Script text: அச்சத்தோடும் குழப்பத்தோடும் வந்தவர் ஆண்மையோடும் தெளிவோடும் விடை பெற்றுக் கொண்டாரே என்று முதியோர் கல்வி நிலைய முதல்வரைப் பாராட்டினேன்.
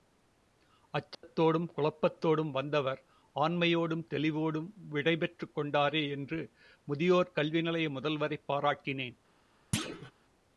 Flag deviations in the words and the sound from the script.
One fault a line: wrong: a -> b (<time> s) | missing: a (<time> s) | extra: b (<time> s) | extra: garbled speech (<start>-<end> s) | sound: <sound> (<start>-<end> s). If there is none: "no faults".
sound: dropout (1.1-1.2 s)
sound: thud (9.7-10.1 s)